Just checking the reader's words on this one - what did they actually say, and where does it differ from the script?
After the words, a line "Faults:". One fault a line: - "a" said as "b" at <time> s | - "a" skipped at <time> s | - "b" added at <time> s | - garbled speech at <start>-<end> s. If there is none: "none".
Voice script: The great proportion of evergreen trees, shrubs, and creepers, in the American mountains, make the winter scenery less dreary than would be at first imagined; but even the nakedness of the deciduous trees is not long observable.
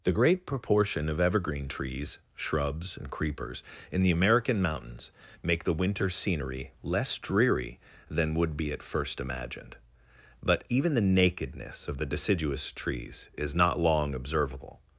The great proportion of evergreen trees, shrubs, and creepers, in the American mountains, make the winter scenery less dreary than would be at first imagined; but even the nakedness of the deciduous trees is not long observable.
Faults:
none